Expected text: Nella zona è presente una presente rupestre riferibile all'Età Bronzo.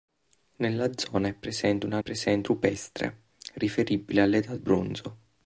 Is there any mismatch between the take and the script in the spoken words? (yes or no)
no